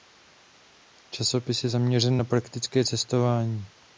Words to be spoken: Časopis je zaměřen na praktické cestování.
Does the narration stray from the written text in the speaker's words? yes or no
no